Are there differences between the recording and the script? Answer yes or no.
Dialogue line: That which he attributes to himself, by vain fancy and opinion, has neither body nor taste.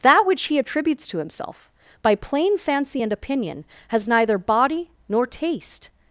yes